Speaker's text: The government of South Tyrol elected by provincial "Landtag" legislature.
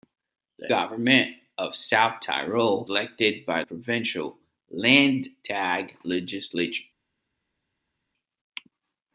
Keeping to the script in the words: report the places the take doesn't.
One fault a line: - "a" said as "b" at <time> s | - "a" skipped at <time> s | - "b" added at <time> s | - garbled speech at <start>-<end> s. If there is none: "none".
none